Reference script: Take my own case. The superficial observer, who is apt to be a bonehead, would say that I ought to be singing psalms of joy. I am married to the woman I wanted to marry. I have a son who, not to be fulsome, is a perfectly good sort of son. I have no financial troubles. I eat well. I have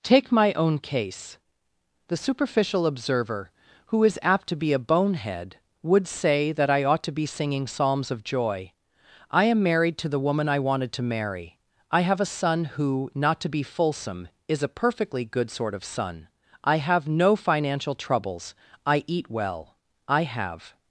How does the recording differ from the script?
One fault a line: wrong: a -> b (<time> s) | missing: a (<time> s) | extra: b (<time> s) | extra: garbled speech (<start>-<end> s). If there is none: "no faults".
no faults